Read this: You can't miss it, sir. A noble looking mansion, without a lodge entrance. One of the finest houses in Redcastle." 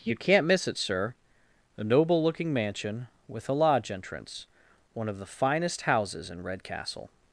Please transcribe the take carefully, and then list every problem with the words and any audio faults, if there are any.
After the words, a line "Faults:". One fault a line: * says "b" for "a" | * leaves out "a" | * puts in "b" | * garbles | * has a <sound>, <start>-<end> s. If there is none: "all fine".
You can't miss it, sir. A noble looking mansion, with a lodge entrance. One of the finest houses in Redcastle."
Faults:
* says "with" for "without"